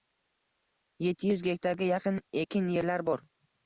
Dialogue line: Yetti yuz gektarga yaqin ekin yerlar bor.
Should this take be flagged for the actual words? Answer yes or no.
no